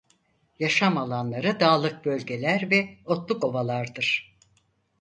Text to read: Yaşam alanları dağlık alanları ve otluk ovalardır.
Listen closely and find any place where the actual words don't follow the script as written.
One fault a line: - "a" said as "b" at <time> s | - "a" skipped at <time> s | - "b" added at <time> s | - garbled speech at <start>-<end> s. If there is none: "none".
- "alanları" said as "bölgeler" at 2.0 s